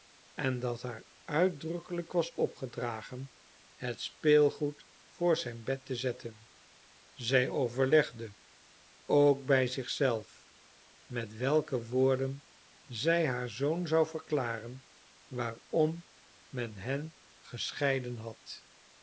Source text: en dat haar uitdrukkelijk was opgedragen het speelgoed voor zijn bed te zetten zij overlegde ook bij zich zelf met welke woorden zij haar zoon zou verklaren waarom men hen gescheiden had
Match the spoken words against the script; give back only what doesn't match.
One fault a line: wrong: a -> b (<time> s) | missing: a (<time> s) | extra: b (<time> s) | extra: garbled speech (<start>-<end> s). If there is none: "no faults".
no faults